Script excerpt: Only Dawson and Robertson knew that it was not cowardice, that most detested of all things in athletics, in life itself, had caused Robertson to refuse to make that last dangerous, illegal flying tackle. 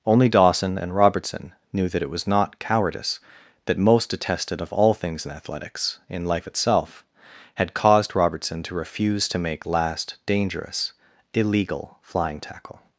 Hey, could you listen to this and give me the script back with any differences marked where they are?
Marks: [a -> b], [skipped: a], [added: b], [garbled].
Only Dawson and Robertson knew that it was not cowardice, that most detested of all things in athletics, in life itself, had caused Robertson to refuse to make [skipped: that] last dangerous, illegal flying tackle.